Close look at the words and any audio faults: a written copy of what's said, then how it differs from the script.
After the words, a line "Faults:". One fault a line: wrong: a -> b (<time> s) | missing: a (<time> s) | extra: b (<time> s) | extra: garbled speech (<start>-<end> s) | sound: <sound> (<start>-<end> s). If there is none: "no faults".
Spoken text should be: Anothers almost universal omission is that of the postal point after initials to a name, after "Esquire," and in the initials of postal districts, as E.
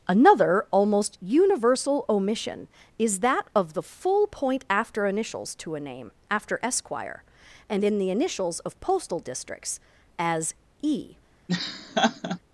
Another almost universal omission is that of the full point after initials to a name, after "Esquire," and in the initials of postal districts, as E.
Faults:
wrong: Anothers -> Another (0.1 s)
wrong: postal -> full (3.8 s)
sound: laugh (11.5-12.4 s)